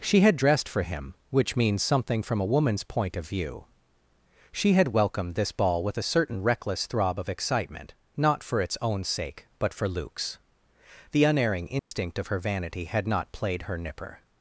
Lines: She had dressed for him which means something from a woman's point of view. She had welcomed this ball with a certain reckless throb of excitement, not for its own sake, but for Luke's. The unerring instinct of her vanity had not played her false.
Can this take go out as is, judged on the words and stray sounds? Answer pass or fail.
fail